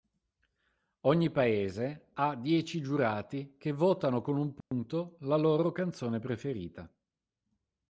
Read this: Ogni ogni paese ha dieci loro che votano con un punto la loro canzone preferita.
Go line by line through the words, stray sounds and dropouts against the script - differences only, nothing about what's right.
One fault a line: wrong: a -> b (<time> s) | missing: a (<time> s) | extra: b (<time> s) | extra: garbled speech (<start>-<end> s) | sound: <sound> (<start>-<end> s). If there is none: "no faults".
missing: ogni (1.3 s)
wrong: loro -> giurati (2.8 s)
sound: dropout (4.6-4.7 s)